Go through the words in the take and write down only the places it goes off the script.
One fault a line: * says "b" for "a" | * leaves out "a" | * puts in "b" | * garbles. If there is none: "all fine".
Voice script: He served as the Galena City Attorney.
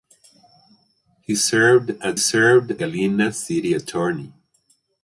* says "served" for "the"